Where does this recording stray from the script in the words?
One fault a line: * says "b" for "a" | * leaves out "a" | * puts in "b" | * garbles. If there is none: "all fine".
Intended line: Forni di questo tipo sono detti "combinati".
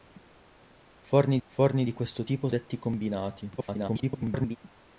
* puts in "forni"
* leaves out "sono"
* garbles